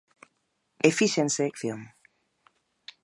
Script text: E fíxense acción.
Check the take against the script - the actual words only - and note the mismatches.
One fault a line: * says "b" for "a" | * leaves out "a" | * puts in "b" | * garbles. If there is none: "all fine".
all fine